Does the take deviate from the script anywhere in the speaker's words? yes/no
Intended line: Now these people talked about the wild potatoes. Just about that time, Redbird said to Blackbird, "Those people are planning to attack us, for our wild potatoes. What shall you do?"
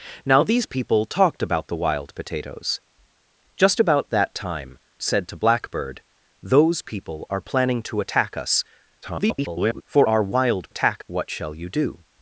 yes